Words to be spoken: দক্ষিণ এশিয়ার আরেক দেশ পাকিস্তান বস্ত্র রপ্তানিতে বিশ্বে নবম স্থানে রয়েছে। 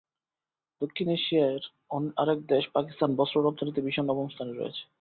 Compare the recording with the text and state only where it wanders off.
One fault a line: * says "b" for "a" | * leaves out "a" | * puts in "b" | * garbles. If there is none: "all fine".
all fine